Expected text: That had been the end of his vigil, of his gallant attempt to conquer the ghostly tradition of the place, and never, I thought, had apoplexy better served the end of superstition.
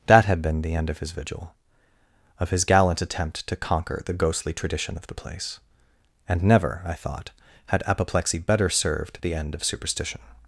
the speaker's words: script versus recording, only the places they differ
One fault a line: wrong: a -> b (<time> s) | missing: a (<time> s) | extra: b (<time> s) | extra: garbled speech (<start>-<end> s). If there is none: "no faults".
no faults